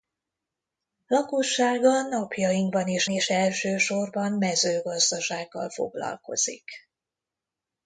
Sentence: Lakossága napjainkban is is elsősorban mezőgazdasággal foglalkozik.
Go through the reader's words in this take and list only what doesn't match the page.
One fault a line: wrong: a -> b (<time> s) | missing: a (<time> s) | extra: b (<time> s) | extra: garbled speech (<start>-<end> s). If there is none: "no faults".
no faults